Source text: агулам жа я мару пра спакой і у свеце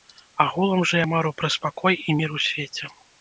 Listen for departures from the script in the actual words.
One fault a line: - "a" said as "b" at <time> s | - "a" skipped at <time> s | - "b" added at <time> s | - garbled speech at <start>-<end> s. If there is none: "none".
- "мір" added at 2.2 s